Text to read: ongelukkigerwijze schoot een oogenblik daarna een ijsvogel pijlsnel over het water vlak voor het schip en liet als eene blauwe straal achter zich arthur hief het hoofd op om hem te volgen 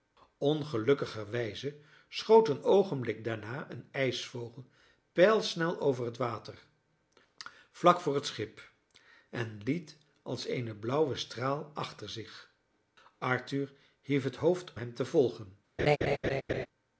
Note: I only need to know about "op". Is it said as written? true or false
false